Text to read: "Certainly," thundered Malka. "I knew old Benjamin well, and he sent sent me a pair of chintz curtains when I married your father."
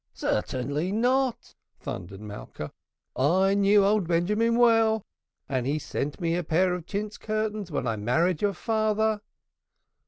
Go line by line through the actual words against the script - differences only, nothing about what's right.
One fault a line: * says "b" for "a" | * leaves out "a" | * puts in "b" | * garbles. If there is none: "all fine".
* puts in "not"
* leaves out "sent"